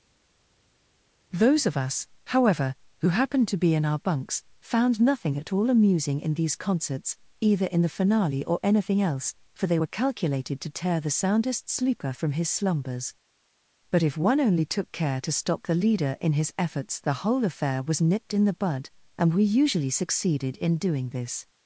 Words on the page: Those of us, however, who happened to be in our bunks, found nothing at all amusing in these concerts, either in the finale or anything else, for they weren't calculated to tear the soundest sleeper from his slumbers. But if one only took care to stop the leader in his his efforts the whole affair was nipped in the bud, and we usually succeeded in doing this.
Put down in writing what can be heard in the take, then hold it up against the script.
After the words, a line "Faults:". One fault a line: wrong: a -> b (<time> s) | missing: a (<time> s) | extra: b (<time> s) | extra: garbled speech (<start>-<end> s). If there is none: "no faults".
Those of us, however, who happened to be in our bunks, found nothing at all amusing in these concerts, either in the finale or anything else, for they were calculated to tear the soundest sleeper from his slumbers. But if one only took care to stop the leader in his efforts the whole affair was nipped in the bud, and we usually succeeded in doing this.
Faults:
wrong: weren't -> were (9.7 s)
missing: his (16.5 s)